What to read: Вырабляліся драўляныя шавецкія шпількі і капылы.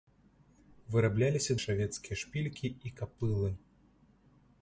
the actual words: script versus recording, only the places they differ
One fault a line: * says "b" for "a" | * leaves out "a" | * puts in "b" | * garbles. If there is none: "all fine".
* leaves out "драўляныя"